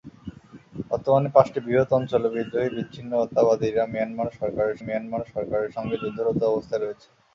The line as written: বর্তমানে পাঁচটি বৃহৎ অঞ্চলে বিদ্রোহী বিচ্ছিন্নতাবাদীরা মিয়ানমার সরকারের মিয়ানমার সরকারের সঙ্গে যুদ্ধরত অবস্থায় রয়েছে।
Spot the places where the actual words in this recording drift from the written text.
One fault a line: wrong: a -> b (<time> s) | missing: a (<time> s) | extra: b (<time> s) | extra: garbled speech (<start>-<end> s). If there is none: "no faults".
no faults